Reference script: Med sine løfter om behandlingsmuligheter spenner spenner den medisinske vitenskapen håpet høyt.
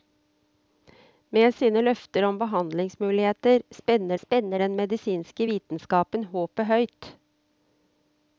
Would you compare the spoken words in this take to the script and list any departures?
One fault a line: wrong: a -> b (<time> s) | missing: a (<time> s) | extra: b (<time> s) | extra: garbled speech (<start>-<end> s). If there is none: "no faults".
no faults